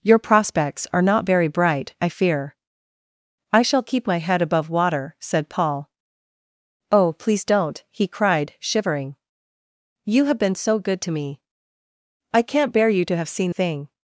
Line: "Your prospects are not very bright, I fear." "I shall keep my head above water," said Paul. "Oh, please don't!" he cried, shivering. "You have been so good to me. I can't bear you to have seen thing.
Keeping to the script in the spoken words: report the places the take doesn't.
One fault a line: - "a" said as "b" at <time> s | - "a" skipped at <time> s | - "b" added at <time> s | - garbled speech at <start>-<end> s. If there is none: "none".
none